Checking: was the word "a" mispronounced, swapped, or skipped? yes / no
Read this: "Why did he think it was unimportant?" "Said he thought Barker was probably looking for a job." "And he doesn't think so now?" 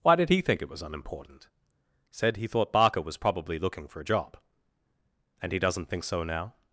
no